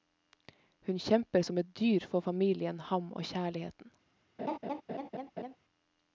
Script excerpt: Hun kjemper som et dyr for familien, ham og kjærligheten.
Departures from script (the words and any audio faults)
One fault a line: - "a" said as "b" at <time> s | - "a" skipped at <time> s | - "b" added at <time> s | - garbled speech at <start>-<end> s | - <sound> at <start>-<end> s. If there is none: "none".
- laugh at 4.4-5.6 s